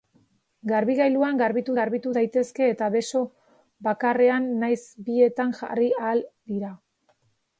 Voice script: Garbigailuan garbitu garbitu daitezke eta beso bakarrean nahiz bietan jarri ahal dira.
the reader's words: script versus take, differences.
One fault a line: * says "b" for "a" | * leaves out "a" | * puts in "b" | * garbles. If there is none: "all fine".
all fine